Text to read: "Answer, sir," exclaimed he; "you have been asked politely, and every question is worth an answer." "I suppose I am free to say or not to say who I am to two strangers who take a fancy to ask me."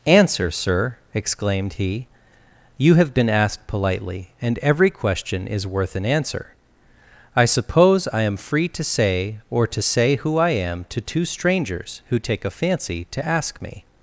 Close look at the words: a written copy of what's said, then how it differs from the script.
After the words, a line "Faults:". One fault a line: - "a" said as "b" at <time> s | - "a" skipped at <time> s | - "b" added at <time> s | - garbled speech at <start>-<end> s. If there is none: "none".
"Answer, sir," exclaimed he; "you have been asked politely, and every question is worth an answer." "I suppose I am free to say or to say who I am to two strangers who take a fancy to ask me."
Faults:
- "not" skipped at 9.7 s